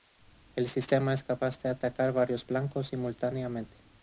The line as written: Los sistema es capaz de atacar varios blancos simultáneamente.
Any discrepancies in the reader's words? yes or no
yes